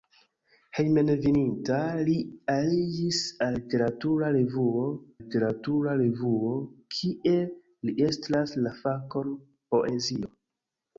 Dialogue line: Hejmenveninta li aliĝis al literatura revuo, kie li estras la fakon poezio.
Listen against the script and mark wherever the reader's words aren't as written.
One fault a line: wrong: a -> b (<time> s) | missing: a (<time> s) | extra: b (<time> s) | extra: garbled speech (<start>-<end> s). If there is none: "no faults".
extra: literatura revuo (5.2 s)